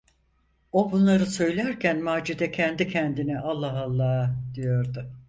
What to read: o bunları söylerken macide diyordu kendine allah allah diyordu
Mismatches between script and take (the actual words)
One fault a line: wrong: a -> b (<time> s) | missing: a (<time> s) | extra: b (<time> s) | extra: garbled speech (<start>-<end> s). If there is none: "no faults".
wrong: diyordu -> kendi (2.5 s)